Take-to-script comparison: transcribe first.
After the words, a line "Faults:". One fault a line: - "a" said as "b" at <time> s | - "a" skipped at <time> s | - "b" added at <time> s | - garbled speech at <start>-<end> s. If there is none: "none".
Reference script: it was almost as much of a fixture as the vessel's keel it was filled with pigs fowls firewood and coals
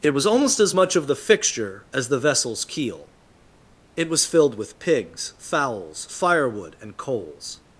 it was almost as much of the fixture as the vessel's keel it was filled with pigs fowls firewood and coals
Faults:
- "a" said as "the" at 1.1 s